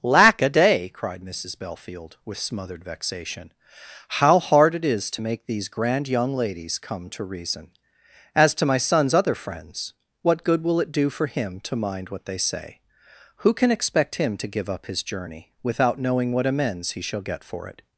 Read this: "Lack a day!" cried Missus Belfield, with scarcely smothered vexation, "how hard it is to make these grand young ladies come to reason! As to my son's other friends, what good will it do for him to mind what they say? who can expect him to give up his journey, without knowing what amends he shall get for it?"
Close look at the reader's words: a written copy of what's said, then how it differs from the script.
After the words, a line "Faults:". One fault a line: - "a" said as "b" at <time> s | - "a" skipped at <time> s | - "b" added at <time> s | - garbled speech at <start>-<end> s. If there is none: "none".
"Lack a day!" cried Missus Belfield, with smothered vexation, "how hard it is to make these grand young ladies come to reason! As to my son's other friends, what good will it do for him to mind what they say? who can expect him to give up his journey, without knowing what amends he shall get for it?"
Faults:
- "scarcely" skipped at 2.4 s